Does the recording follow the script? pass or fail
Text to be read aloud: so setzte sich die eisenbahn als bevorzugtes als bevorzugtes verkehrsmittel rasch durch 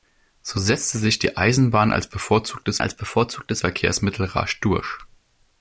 pass